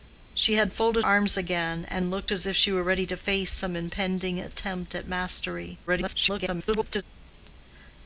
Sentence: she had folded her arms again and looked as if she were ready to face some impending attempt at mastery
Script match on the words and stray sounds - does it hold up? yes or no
no